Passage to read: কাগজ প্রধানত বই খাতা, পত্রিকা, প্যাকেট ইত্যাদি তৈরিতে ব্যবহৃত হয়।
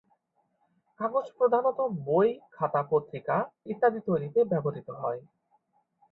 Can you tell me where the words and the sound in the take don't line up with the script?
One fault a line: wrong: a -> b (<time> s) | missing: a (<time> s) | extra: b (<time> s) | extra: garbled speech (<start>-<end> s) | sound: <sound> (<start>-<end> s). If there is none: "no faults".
missing: প্যাকেট (3.4 s)